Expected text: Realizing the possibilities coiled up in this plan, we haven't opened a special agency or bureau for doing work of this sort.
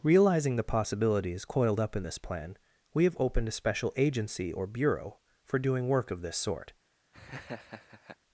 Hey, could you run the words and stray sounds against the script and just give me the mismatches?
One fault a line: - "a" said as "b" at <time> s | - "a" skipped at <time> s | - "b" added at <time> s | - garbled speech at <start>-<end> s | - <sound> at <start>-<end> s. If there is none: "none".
- "haven't" said as "have" at 3.0 s
- laugh at 7.1-8.2 s